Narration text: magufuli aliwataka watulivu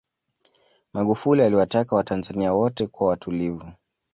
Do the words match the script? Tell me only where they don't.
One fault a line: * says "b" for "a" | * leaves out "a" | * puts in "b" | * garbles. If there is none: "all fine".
* puts in "watanzania wote kuwa"